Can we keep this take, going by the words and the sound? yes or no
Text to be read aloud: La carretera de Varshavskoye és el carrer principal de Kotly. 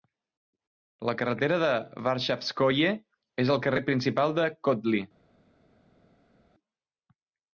yes